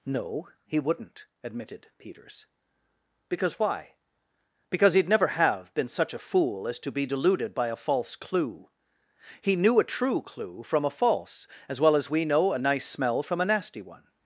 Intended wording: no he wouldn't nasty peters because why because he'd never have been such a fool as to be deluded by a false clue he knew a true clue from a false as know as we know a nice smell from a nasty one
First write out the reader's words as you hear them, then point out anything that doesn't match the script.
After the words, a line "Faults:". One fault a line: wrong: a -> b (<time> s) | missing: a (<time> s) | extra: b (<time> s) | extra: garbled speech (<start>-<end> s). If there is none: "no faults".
no he wouldn't admitted peters because why because he'd never have been such a fool as to be deluded by a false clue he knew a true clue from a false as well as we know a nice smell from a nasty one
Faults:
wrong: nasty -> admitted (1.4 s)
wrong: know -> well (11.8 s)